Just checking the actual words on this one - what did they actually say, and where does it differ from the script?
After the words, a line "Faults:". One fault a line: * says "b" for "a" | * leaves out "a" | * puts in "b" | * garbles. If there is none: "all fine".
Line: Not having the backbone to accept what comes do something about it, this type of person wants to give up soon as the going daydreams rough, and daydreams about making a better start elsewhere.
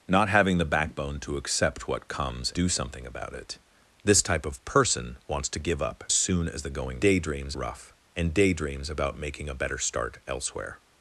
Not having the backbone to accept what comes do something about it, this type of person wants to give up soon as the going daydreams rough, and daydreams about making a better start elsewhere.
Faults:
all fine